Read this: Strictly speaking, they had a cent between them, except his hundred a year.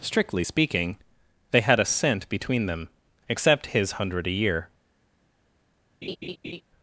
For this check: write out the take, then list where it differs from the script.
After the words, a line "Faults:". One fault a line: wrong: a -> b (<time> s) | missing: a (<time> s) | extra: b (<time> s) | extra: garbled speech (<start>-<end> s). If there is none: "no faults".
Strictly speaking, they had a cent between them, except his hundred a year.
Faults:
no faults